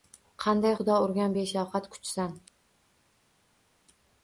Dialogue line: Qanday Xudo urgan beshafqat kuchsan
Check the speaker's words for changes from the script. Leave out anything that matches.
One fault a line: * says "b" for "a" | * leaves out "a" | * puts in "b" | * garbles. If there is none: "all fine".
all fine